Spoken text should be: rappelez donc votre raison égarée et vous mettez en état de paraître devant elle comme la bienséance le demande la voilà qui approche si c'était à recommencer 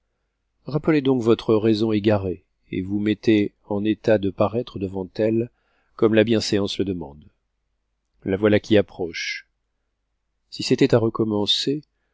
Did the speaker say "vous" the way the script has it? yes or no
yes